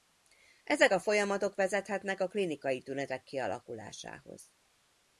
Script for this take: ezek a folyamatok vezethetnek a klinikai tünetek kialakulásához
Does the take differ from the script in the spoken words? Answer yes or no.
no